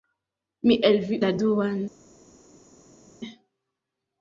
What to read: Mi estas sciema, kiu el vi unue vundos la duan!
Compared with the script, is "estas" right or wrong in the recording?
wrong